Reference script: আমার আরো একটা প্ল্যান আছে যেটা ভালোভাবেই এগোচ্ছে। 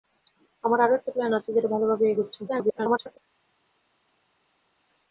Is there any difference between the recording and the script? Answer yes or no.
yes